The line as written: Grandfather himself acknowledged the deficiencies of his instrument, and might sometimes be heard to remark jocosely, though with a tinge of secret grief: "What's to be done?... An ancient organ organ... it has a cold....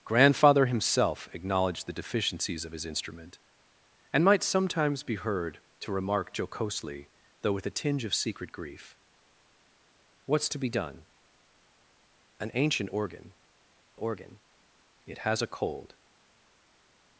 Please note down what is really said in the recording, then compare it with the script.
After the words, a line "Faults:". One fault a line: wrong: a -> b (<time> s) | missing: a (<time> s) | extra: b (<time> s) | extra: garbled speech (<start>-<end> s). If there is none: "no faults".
Grandfather himself acknowledged the deficiencies of his instrument, and might sometimes be heard to remark jocosely, though with a tinge of secret grief: "What's to be done?... An ancient organ organ... it has a cold....
Faults:
no faults